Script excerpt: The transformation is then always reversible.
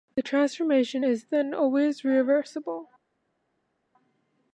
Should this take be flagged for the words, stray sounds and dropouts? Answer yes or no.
no